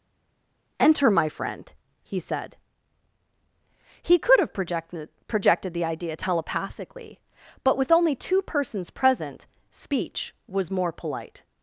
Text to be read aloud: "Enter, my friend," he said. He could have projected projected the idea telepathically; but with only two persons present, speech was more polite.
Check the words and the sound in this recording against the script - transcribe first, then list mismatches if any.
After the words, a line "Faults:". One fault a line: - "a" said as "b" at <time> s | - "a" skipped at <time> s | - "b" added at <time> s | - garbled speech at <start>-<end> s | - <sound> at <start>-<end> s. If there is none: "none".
"Enter, my friend," he said. He could have projected projected the idea telepathically; but with only two persons present, speech was more polite.
Faults:
none